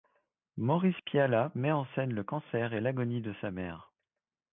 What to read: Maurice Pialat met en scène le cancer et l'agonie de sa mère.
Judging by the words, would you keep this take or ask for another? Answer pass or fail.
pass